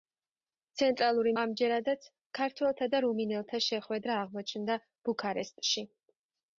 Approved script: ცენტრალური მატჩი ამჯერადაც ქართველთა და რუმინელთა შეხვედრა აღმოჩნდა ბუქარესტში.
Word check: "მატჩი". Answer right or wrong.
wrong